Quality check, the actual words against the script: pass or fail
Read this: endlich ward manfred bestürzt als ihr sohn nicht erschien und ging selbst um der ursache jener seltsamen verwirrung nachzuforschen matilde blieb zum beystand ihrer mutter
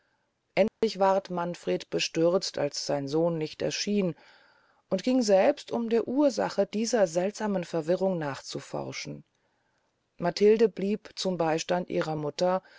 fail